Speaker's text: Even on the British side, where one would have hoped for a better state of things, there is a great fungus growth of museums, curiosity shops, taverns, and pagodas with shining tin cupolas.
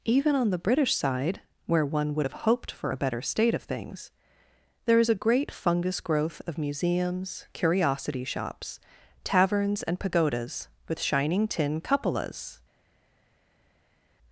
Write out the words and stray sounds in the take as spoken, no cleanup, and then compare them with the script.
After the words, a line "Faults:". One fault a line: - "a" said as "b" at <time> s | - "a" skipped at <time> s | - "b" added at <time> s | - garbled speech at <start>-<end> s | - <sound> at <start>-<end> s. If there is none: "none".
Even on the British side, where one would have hoped for a better state of things, there is a great fungus growth of museums, curiosity shops, taverns, and pagodas with shining tin cupolas.
Faults:
none